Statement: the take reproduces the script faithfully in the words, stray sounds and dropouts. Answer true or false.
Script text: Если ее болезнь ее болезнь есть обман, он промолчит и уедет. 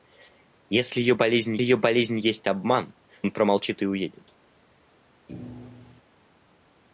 false